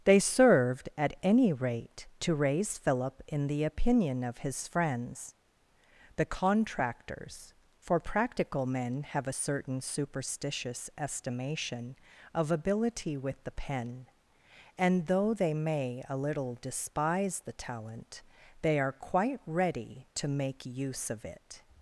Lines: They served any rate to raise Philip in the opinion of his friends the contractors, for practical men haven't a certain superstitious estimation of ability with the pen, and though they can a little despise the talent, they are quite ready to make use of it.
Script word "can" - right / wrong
wrong